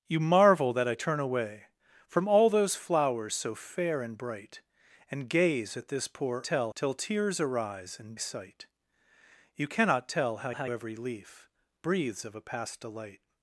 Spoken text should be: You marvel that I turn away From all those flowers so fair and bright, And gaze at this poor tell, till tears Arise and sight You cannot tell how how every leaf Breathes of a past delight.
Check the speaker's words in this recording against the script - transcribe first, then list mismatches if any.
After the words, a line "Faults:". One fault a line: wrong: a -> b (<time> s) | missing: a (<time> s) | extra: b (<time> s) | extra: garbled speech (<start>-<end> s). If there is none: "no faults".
You marvel that I turn away From all those flowers so fair and bright, And gaze at this poor tell, till tears Arise and sight You cannot tell how how every leaf Breathes of a past delight.
Faults:
no faults